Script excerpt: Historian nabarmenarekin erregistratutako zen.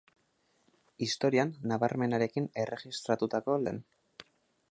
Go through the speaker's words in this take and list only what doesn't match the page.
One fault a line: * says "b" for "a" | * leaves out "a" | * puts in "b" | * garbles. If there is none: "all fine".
all fine